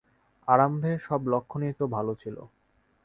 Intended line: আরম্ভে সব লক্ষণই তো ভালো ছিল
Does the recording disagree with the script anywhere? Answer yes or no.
no